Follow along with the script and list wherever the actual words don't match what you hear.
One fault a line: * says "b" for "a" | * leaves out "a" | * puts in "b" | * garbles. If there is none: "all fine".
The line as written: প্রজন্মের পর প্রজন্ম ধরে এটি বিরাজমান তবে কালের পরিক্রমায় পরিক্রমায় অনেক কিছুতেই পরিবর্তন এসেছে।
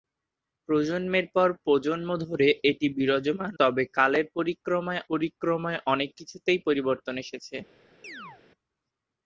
all fine